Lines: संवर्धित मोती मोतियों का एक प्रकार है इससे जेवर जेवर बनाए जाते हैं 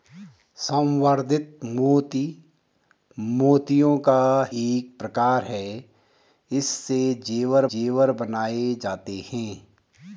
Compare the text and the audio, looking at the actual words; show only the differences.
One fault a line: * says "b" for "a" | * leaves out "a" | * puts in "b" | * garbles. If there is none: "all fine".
all fine